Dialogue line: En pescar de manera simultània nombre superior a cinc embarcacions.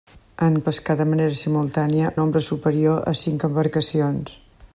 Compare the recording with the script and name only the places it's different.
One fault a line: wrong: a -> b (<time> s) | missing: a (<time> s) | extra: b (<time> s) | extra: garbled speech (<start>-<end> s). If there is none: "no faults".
no faults